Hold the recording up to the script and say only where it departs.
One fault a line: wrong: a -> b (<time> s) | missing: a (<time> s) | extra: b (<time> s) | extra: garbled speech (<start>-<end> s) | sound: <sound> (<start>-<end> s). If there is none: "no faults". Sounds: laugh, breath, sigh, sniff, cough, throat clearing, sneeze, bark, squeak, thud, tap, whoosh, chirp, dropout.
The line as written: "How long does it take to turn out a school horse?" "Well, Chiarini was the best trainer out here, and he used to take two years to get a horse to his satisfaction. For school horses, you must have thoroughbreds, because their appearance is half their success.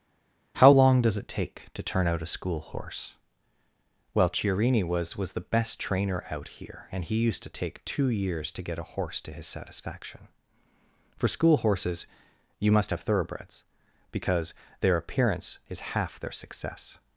extra: was (5.2 s)